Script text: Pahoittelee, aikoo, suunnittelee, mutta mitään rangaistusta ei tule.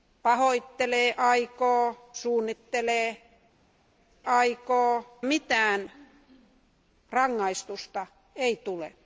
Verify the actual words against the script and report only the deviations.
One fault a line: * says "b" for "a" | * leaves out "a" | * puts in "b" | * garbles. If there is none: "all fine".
* says "aikoo" for "mutta"